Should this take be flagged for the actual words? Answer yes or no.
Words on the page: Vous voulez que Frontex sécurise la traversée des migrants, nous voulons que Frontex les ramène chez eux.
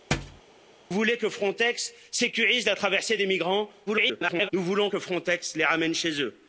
yes